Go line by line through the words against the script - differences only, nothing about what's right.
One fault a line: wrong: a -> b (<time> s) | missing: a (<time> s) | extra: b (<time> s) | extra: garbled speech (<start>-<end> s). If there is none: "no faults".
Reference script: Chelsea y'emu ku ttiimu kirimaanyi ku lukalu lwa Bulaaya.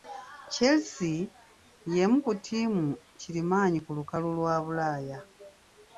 no faults